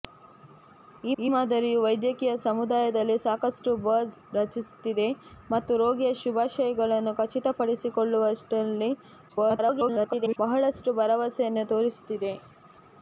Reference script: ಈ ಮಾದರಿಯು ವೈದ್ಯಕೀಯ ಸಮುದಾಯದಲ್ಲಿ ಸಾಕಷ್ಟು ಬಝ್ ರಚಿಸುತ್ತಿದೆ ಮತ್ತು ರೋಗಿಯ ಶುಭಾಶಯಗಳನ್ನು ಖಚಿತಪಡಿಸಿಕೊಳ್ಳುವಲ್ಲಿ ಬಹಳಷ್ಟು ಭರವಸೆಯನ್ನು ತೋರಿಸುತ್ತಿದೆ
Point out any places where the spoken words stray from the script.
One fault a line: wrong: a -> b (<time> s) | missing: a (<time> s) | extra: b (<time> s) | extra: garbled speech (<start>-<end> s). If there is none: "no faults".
extra: ಈ (1.2 s)
extra: garbled speech (9.3-10.4 s)